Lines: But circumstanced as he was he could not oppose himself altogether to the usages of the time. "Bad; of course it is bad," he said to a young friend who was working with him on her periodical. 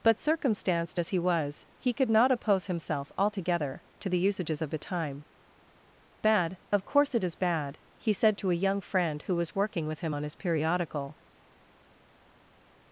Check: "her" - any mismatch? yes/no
yes